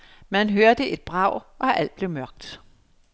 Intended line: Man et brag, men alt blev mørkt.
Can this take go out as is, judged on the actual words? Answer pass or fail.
fail